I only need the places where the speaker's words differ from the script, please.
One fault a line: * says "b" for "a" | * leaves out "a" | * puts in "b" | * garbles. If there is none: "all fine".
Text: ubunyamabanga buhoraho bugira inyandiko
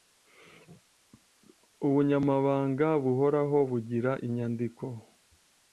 all fine